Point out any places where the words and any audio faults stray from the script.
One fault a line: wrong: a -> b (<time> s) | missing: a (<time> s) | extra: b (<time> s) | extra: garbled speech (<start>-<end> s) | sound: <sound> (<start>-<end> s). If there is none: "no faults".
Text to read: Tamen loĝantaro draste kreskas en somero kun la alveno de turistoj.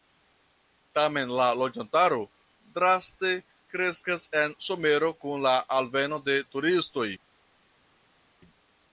extra: la (1.4 s)